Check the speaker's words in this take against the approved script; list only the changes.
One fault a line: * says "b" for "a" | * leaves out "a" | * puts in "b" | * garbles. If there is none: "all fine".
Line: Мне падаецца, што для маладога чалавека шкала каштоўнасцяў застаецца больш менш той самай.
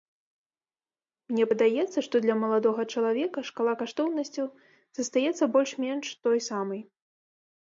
all fine